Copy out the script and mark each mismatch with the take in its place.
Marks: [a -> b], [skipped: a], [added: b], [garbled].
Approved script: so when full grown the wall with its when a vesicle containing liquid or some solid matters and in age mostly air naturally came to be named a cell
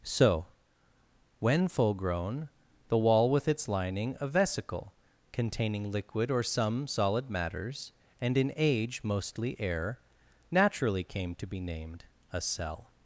so when full grown the wall with its [when -> lining] a vesicle containing liquid or some solid matters and in age mostly air naturally came to be named a cell